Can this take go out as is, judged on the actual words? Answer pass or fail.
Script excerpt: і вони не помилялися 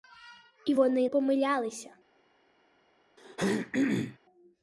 fail